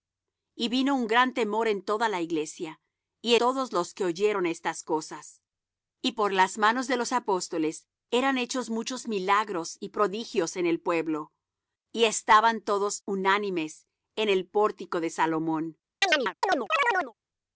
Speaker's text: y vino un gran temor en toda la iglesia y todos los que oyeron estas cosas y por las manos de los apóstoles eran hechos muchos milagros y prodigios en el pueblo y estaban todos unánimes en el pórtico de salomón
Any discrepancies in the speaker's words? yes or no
no